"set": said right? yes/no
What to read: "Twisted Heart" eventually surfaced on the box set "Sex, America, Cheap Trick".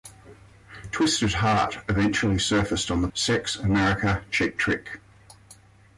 no